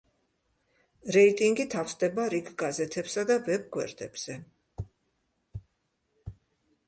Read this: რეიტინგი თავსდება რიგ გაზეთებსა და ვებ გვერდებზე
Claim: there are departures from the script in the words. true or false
false